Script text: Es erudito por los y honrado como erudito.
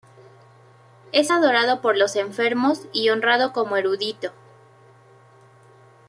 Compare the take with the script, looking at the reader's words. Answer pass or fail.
fail